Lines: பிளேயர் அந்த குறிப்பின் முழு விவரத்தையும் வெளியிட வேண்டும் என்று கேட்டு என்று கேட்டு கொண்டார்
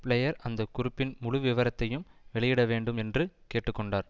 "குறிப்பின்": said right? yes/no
yes